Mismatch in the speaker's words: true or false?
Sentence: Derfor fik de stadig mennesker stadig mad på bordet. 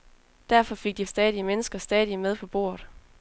false